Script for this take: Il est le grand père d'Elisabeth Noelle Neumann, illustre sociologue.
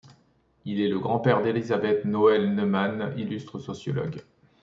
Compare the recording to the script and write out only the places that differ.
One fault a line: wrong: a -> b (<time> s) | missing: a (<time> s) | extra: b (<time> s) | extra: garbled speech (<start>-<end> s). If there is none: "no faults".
no faults